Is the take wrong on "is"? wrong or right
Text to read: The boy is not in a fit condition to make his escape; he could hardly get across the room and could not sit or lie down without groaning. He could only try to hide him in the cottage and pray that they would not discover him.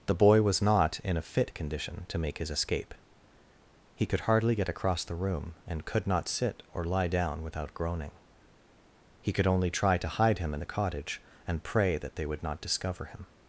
wrong